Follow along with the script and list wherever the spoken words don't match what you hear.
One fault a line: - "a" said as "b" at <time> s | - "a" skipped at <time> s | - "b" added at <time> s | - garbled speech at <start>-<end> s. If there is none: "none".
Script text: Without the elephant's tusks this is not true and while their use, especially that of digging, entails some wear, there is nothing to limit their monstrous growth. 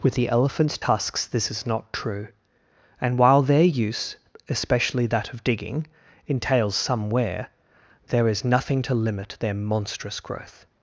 - "Without" said as "With" at 0.0 s